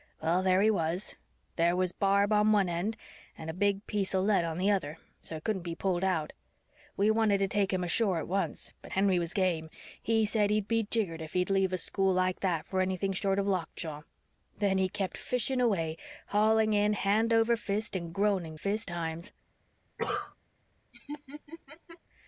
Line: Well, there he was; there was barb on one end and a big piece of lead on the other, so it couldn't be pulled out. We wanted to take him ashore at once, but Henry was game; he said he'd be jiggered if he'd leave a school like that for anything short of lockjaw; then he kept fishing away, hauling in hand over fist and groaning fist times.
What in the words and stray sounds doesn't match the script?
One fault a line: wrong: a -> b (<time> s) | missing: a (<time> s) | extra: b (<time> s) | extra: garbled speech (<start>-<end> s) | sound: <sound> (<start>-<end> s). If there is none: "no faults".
sound: cough (20.0-20.4 s)
sound: laugh (20.9-22.0 s)